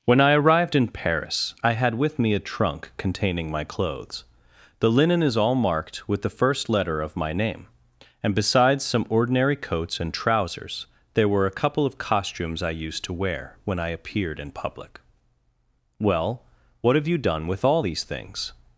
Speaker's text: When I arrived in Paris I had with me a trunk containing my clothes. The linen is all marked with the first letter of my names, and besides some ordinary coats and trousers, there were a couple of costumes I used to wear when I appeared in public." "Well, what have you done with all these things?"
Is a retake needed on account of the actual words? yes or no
yes